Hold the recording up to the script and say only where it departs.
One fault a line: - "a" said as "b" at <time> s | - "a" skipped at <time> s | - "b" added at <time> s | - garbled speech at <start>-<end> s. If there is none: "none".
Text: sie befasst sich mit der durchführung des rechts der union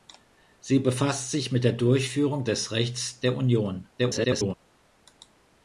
- garbled speech at 4.0-4.5 s